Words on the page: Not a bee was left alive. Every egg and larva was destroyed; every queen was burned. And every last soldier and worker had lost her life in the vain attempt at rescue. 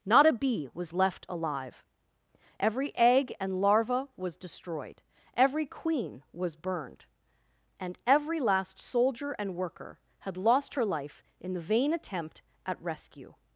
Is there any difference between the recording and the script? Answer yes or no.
no